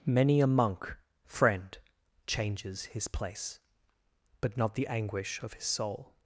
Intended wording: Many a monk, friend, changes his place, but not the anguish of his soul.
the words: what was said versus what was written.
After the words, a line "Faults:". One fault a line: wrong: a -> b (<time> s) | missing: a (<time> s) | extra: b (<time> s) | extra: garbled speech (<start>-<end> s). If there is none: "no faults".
Many a monk, friend, changes his place, but not the anguish of his soul.
Faults:
no faults